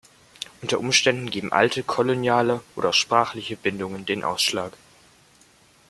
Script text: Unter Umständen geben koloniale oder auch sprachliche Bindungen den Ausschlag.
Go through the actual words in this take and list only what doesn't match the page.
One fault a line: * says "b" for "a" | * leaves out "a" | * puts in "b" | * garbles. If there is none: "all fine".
* puts in "alte"